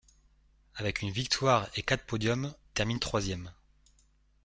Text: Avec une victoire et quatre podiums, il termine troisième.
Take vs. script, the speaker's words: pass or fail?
fail